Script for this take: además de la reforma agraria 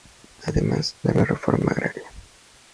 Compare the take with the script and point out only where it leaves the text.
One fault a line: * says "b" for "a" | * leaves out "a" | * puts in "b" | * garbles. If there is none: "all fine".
all fine